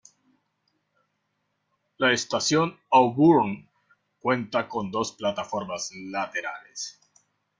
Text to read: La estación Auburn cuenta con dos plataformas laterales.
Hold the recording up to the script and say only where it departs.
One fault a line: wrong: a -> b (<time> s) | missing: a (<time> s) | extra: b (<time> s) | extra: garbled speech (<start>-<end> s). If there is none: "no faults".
no faults